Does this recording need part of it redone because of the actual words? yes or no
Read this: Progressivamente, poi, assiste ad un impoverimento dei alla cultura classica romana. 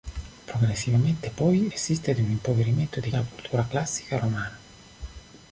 no